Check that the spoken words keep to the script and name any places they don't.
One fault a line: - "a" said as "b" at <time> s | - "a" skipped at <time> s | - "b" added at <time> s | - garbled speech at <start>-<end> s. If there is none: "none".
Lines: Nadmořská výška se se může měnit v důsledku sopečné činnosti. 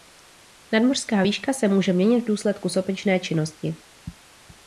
- "se" skipped at 1.7 s